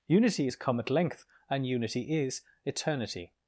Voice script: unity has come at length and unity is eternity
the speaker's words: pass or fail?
fail